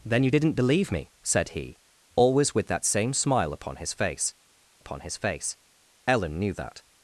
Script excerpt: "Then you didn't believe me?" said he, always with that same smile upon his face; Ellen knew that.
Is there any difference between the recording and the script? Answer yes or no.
yes